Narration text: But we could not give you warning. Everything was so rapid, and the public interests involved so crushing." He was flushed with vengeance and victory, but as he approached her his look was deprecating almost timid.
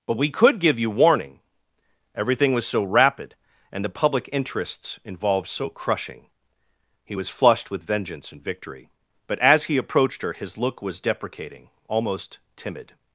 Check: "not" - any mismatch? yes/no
yes